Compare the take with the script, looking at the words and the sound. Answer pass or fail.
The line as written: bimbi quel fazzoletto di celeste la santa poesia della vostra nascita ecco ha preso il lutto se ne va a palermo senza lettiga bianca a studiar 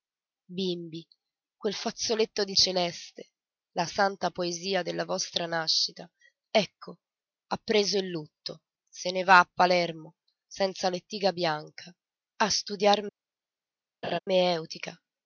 fail